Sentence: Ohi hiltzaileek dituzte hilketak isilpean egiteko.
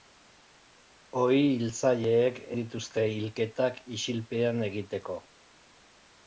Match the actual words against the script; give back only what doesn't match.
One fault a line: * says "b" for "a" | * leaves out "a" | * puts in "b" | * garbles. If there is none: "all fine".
all fine